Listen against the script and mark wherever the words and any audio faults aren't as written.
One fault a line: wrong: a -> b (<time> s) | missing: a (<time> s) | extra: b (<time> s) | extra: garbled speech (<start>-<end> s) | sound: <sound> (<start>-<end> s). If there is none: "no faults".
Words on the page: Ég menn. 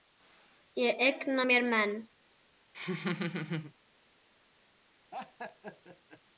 extra: eigna mér (1.0 s)
sound: laugh (2.7-3.7 s)
sound: laugh (5.1-6.2 s)